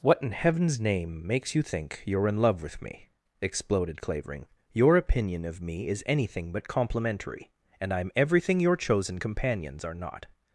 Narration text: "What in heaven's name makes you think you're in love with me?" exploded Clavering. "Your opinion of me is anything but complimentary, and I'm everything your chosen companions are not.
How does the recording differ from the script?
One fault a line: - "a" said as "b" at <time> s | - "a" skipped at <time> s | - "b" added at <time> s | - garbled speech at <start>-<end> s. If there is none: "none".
none